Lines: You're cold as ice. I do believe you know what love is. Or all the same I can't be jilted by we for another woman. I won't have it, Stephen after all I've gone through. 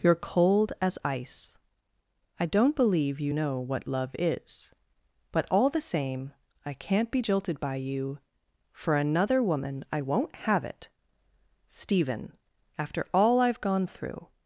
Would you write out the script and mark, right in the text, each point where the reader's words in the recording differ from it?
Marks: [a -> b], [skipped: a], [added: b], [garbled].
You're cold as ice. I [do -> don't] believe you know what love is. [Or -> But] all the same I can't be jilted by [we -> you] for another woman. I won't have it, Stephen after all I've gone through.